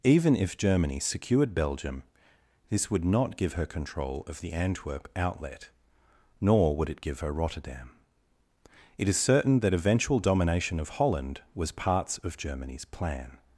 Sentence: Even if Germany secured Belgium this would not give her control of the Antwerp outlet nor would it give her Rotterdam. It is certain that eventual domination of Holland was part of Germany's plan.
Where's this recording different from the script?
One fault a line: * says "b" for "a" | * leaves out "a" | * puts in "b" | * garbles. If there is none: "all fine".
* says "parts" for "part"